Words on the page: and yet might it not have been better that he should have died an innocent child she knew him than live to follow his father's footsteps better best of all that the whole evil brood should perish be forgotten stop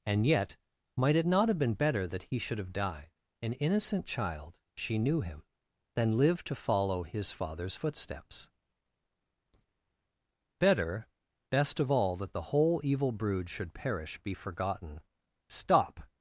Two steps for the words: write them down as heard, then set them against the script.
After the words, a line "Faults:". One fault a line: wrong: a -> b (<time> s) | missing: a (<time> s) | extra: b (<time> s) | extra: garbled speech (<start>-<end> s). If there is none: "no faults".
and yet might it not have been better that he should have died an innocent child she knew him than live to follow his father's footsteps better best of all that the whole evil brood should perish be forgotten stop
Faults:
no faults